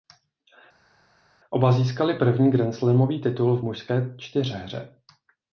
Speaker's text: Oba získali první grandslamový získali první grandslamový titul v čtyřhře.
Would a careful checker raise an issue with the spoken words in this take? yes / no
yes